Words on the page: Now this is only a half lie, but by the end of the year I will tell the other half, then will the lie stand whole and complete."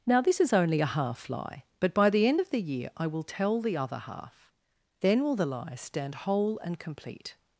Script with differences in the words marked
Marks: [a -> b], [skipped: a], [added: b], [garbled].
Now this is only a half lie, but by the end of the year I will tell the other half, then will the lie stand whole and complete."